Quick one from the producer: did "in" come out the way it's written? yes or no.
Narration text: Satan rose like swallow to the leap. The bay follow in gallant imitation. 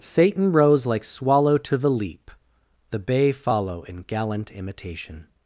yes